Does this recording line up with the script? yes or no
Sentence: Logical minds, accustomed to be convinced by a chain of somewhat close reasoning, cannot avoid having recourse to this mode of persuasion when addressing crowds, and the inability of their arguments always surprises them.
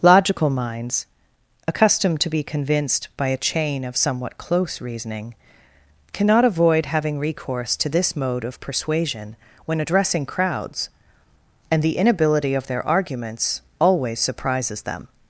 yes